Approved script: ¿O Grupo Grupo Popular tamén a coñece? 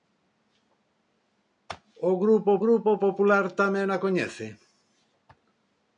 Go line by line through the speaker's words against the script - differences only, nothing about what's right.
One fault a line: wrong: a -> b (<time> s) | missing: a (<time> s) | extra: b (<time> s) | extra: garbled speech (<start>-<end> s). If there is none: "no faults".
no faults